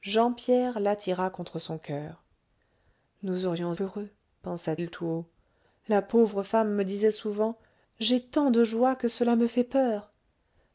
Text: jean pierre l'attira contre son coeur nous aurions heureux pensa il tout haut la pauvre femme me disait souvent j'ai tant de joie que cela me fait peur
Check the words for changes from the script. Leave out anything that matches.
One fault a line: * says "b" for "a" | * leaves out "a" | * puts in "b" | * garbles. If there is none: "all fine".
all fine